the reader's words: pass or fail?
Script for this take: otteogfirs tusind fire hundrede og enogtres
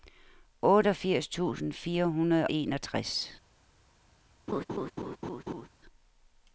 fail